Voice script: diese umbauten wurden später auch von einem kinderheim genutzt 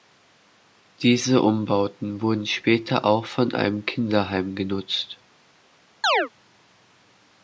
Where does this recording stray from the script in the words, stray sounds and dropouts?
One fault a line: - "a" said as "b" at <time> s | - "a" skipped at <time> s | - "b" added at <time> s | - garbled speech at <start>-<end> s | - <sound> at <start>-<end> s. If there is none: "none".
- chirp at 6.0-6.3 s